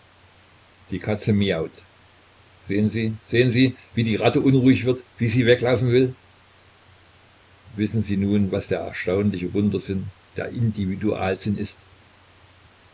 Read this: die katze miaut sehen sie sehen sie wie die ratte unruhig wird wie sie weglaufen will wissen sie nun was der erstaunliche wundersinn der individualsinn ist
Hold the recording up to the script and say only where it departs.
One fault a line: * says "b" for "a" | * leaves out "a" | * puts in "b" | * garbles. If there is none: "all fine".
all fine